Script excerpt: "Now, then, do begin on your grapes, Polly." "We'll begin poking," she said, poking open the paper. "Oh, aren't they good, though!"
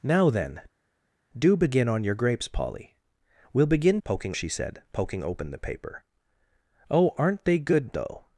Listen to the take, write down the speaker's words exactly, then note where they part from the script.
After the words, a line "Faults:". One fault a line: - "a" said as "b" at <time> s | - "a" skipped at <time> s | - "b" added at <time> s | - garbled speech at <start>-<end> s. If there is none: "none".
"Now, then, do begin on your grapes, Polly." "We'll begin poking," she said, poking open the paper. "Oh, aren't they good, though!"
Faults:
none